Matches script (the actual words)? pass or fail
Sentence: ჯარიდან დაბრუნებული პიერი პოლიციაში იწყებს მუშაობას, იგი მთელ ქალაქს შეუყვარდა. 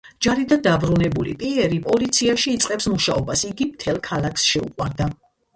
pass